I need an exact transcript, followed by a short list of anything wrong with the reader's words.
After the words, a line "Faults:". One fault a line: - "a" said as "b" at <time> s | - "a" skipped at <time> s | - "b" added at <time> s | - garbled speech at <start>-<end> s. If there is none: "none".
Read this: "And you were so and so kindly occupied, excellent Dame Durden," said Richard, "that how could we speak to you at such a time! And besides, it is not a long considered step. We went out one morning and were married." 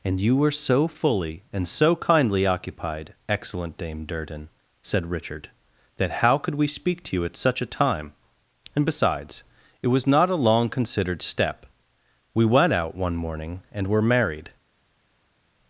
"And you were so fully and so kindly occupied, excellent Dame Durden," said Richard, "that how could we speak to you at such a time! And besides, it was not a long considered step. We went out one morning and were married."
Faults:
- "fully" added at 0.9 s
- "is" said as "was" at 9.9 s